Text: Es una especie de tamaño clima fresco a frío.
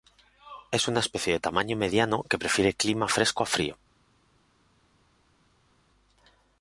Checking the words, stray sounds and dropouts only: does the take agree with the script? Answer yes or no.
no